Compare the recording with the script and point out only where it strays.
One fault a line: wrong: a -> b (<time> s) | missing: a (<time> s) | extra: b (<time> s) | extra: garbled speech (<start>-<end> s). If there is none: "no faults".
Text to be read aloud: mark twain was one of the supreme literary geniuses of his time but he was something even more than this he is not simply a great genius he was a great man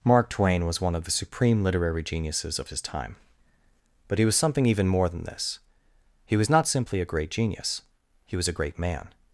wrong: is -> was (6.3 s)